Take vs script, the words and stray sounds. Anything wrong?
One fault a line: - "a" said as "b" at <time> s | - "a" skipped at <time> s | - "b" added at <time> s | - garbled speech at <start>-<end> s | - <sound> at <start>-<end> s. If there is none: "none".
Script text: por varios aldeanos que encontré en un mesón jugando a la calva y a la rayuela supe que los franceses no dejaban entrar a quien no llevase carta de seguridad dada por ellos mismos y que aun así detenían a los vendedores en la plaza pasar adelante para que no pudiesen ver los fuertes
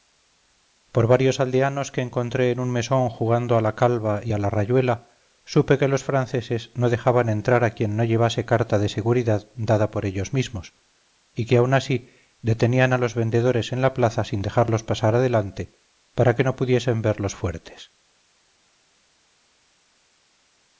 - "sin dejarlos" added at 14.2 s